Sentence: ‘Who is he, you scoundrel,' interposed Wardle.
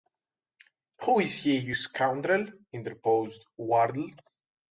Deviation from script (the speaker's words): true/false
false